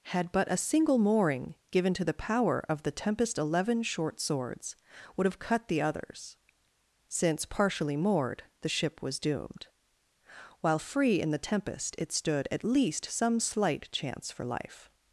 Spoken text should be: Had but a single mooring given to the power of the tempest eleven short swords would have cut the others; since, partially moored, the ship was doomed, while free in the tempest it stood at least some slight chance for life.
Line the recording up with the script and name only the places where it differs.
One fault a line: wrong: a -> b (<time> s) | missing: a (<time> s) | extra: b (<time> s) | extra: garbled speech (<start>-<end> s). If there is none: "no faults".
no faults